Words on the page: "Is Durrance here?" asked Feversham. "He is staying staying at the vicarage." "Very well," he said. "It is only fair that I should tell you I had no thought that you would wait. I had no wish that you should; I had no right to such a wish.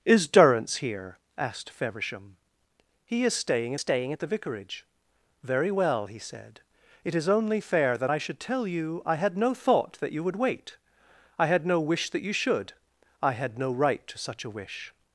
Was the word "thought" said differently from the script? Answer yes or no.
no